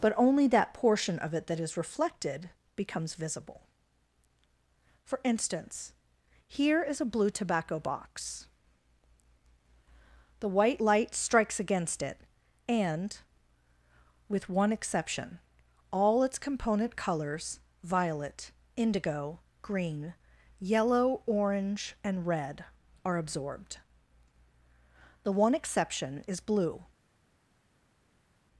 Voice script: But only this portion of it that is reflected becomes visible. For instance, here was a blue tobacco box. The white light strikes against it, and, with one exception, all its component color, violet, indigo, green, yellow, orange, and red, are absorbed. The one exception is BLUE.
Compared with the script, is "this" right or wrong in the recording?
wrong